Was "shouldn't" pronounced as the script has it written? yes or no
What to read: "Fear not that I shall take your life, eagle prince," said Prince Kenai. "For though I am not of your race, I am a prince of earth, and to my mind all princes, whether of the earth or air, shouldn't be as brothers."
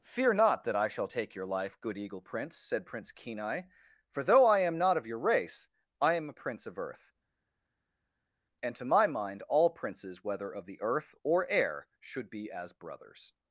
no